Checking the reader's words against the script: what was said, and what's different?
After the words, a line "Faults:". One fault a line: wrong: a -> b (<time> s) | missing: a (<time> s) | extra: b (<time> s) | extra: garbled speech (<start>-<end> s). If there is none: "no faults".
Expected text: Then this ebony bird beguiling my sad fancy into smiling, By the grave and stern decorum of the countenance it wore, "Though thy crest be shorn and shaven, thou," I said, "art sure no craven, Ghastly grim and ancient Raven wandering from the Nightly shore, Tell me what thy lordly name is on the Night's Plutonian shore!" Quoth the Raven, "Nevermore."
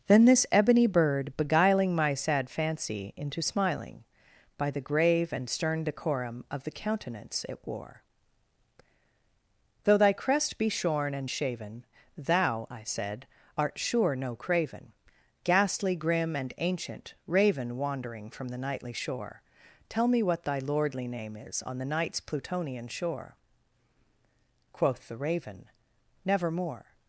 Then this ebony bird beguiling my sad fancy into smiling, By the grave and stern decorum of the countenance it wore, "Though thy crest be shorn and shaven, thou," I said, "art sure no craven, Ghastly grim and ancient Raven wandering from the Nightly shore, Tell me what thy lordly name is on the Night's Plutonian shore!" Quoth the Raven, "Nevermore."
Faults:
no faults